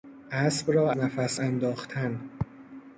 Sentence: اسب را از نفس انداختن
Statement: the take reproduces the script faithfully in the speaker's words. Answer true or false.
false